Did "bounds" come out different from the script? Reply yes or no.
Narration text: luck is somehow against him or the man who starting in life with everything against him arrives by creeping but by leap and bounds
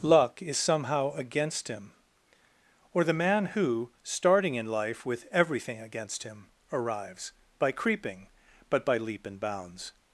no